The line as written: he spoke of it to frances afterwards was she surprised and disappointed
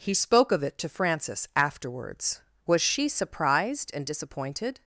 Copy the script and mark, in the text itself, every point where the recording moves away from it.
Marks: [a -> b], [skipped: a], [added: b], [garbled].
he spoke of it to frances afterwards was she surprised and disappointed